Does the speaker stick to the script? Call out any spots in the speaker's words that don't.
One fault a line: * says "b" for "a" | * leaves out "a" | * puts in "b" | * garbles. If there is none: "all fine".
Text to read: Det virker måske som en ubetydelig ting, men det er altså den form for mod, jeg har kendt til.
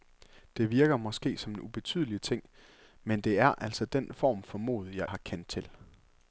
all fine